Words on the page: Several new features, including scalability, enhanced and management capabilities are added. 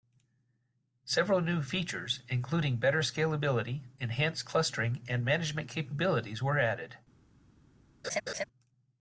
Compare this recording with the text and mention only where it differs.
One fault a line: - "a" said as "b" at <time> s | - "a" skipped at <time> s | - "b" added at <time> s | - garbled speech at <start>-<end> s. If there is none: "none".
- "better" added at 2.8 s
- "clustering" added at 4.5 s
- "are" said as "were" at 6.4 s